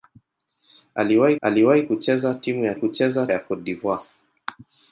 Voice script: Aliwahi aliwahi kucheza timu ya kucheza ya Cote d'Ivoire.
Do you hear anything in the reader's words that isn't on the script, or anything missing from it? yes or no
no